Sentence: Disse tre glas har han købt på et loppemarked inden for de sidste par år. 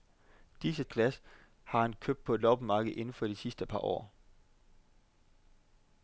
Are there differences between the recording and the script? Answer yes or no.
yes